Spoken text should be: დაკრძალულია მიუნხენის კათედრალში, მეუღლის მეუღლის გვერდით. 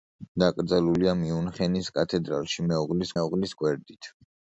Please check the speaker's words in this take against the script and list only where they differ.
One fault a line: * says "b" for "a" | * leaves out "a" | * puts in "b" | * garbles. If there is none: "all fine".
all fine